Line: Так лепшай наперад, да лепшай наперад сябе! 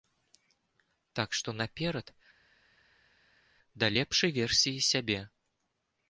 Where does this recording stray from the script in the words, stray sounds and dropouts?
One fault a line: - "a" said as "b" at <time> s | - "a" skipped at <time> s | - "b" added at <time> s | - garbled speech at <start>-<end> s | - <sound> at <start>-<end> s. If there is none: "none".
- "лепшай" said as "што" at 1.4 s
- "наперад" said as "версіі" at 4.4 s